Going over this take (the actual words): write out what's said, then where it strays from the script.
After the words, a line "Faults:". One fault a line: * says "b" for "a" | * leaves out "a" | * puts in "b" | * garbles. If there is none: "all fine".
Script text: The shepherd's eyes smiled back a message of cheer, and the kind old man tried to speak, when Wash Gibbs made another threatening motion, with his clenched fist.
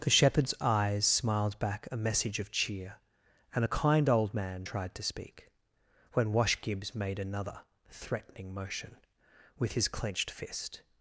The shepherd's eyes smiled back a message of cheer, and a kind old man tried to speak, when Wash Gibbs made another threatening motion, with his clenched fist.
Faults:
* says "a" for "the"